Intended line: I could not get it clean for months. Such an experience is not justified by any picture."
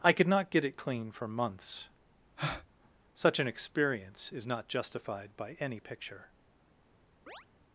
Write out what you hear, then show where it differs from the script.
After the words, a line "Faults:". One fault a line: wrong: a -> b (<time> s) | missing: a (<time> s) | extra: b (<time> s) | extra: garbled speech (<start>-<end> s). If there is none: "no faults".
I could not get it clean for months. Such an experience is not justified by any picture."
Faults:
no faults